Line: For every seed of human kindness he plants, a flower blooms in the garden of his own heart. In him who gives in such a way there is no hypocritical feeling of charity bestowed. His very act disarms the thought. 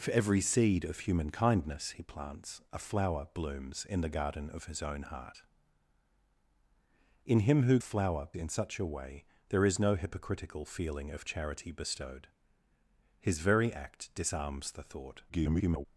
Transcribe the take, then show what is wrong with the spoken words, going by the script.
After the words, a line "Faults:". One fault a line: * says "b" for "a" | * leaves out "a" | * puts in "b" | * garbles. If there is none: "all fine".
For every seed of human kindness he plants, a flower blooms in the garden of his own heart. In him who flower in such a way there is no hypocritical feeling of charity bestowed. His very act disarms the thought. [garbled]
Faults:
* says "flower" for "gives"
* garbles